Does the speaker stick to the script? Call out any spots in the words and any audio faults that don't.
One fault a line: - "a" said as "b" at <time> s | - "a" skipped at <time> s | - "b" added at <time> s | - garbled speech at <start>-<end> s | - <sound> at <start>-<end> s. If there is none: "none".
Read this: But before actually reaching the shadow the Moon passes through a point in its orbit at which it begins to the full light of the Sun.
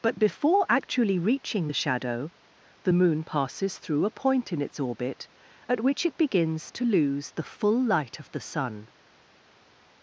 - "lose" added at 6.9 s